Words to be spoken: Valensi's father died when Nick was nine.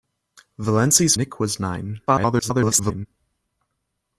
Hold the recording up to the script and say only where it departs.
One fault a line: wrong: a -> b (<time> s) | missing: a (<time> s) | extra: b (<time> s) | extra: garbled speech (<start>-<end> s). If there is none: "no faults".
missing: father died when (1.1 s)
extra: garbled speech (2.1-3.1 s)